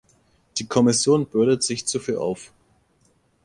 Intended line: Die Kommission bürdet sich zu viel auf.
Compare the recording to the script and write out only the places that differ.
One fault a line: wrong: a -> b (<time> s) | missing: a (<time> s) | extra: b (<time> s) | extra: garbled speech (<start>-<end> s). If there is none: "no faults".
no faults